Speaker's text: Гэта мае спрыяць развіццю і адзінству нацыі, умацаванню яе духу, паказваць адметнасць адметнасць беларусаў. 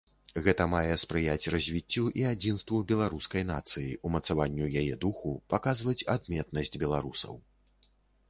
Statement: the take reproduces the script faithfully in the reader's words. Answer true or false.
false